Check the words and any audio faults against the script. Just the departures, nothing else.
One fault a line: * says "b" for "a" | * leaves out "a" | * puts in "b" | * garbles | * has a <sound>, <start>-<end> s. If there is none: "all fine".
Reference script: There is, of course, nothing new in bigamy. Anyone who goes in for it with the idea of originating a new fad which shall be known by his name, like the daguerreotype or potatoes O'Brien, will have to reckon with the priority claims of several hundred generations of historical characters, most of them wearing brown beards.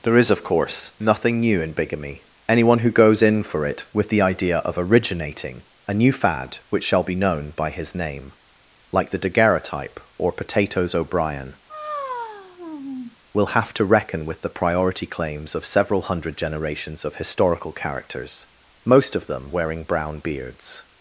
* has a sigh, 11.7-13.2 s